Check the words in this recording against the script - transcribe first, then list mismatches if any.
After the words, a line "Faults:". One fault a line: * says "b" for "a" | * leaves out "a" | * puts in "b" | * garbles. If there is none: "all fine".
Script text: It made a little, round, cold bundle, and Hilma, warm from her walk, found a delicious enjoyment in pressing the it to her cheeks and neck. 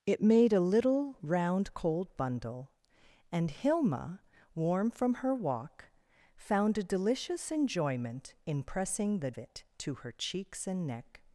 It made a little, round, cold bundle, and Hilma, warm from her walk, found a delicious enjoyment in pressing the it to her cheeks and neck.
Faults:
all fine